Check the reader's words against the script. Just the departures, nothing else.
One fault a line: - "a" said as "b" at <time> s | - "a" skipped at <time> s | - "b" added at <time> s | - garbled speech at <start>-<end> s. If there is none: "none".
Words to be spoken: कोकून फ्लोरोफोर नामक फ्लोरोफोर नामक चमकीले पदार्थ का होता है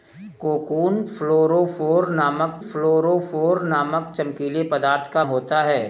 none